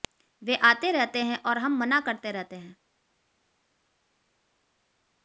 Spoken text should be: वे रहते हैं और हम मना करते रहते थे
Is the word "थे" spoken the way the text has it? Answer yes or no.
no